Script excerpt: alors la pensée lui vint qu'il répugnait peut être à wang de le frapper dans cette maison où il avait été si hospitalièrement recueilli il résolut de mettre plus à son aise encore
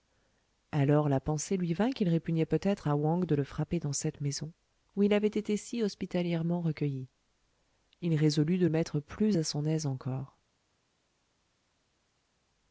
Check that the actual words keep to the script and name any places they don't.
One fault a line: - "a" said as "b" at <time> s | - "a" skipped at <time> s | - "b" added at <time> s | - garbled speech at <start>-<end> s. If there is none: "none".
none